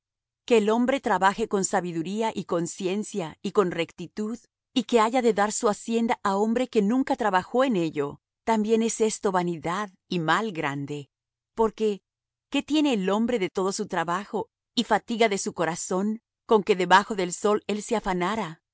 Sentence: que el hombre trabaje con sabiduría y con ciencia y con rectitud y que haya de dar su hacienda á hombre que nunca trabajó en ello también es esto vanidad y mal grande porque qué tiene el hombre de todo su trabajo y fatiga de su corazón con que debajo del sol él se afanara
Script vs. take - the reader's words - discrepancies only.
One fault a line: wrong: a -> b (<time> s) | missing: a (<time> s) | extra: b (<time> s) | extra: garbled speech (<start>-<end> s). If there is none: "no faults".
no faults